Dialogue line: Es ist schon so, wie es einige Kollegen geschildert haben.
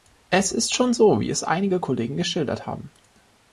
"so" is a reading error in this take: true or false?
false